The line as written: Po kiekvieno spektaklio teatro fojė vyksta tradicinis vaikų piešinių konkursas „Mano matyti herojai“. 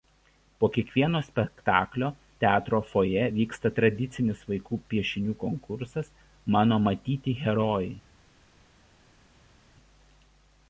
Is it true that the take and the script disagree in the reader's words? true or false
false